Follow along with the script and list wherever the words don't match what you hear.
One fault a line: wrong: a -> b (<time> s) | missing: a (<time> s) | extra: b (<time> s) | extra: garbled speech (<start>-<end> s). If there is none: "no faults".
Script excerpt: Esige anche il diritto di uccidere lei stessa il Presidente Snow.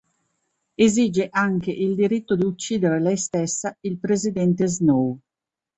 no faults